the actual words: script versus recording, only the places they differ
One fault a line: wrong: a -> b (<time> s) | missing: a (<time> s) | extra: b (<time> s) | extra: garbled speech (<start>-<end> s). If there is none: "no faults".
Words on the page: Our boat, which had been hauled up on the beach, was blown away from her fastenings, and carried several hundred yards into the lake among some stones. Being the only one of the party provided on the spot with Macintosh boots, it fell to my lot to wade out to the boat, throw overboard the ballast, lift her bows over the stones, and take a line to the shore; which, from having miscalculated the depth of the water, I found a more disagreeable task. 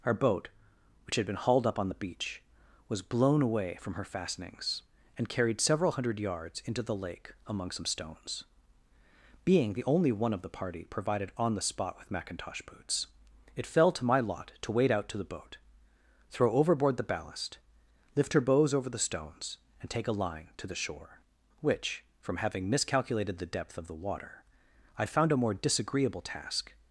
no faults